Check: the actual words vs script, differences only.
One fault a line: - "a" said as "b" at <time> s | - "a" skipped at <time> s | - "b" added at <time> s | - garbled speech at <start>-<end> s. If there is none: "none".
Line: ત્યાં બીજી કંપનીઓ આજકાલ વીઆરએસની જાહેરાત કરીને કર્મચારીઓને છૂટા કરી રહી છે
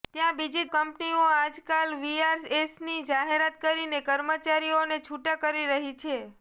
none